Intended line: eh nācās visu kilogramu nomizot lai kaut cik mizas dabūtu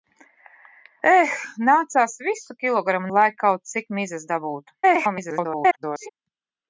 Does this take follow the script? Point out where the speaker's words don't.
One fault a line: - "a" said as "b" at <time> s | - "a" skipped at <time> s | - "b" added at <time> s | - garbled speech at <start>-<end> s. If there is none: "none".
- "nomizot" skipped at 3.1 s
- garbled speech at 4.8-6.1 s